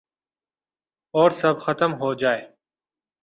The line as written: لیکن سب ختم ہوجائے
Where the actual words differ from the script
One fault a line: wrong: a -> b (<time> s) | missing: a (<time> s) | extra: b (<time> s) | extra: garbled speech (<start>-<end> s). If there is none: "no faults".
wrong: لیکن -> اور (1.1 s)